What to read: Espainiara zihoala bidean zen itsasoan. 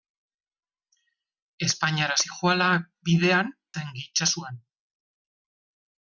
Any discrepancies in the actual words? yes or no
no